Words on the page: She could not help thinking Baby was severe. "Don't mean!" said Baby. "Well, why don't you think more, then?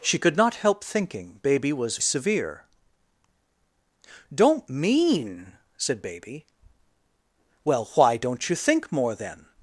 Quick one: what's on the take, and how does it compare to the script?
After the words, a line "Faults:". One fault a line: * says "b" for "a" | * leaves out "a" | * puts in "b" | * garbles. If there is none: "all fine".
She could not help thinking Baby was severe. "Don't mean!" said Baby. "Well, why don't you think more, then?
Faults:
all fine